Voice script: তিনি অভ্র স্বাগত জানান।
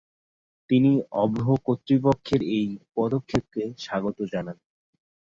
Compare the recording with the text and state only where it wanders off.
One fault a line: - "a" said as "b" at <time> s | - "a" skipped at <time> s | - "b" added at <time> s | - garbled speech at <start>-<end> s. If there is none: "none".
- "কর্তৃপক্ষের এই পদক্ষেপকে" added at 1.6 s